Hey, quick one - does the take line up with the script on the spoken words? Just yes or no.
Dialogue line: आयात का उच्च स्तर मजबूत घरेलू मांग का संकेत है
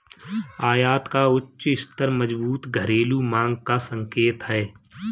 yes